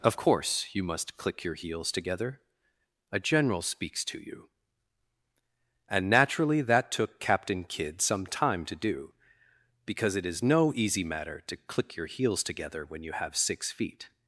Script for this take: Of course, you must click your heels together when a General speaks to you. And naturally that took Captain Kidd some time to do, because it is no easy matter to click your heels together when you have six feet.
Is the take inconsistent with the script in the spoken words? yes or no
yes